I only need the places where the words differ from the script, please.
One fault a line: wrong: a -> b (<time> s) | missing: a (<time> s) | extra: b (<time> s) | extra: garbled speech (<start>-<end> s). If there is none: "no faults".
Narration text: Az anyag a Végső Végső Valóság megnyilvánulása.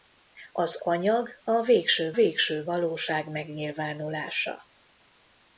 no faults